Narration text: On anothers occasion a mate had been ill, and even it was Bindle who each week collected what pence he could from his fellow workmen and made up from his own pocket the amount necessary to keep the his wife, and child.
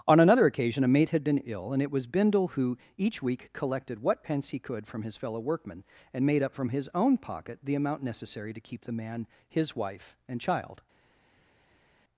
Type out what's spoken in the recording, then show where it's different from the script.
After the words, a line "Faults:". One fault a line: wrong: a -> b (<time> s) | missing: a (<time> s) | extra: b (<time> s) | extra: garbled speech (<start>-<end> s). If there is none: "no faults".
On another occasion a mate had been ill, and it was Bindle who each week collected what pence he could from his fellow workmen and made up from his own pocket the amount necessary to keep the man, his wife, and child.
Faults:
wrong: anothers -> another (0.2 s)
missing: even (1.8 s)
extra: man (8.9 s)